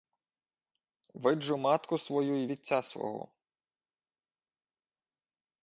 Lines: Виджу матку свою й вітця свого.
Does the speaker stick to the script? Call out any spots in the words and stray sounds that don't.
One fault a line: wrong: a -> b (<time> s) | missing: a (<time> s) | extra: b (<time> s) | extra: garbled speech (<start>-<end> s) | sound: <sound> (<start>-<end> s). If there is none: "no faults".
no faults